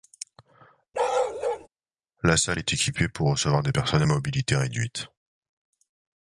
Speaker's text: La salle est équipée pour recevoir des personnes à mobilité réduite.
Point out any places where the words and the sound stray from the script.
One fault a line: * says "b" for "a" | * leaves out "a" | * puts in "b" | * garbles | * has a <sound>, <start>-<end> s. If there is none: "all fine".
* has a bark, 0.9-1.7 s